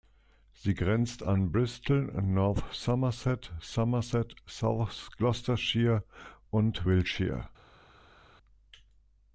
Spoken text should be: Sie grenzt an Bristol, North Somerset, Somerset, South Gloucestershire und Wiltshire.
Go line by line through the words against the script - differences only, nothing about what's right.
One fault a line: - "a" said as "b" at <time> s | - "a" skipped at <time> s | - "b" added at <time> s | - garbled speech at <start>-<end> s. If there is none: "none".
none